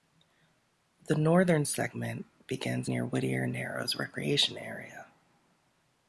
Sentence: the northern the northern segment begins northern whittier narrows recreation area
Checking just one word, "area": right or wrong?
right